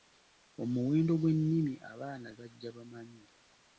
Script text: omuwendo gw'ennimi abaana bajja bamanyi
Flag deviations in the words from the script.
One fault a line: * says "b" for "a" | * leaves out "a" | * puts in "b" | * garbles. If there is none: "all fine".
all fine